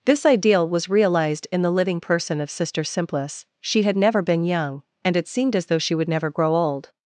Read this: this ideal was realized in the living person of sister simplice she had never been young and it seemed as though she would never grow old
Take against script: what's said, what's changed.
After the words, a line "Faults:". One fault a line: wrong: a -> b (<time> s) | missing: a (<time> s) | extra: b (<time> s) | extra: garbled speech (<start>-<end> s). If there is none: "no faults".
this ideal was realized in the living person of sister simplice she had never been young and it seemed as though she would never grow old
Faults:
no faults